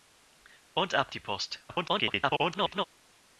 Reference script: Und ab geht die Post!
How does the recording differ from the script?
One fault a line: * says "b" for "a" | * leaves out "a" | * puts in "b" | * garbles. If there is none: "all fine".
* leaves out "geht"
* garbles